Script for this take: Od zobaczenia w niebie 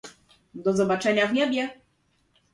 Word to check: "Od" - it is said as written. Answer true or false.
false